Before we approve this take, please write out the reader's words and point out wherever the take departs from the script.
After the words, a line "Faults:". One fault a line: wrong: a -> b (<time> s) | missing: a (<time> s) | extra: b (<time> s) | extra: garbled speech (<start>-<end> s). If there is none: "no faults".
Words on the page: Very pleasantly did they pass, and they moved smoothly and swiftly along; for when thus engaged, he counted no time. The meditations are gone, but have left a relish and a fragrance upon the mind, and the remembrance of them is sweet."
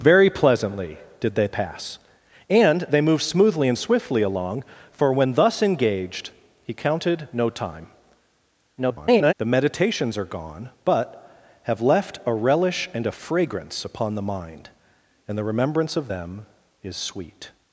Very pleasantly did they pass, and they moved smoothly and swiftly along; for when thus engaged, he counted no time. [garbled] The meditations are gone, but have left a relish and a fragrance upon the mind, and the remembrance of them is sweet."
Faults:
extra: garbled speech (8.8-9.3 s)